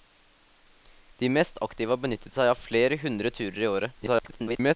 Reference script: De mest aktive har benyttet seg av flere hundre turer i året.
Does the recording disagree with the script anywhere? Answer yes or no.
yes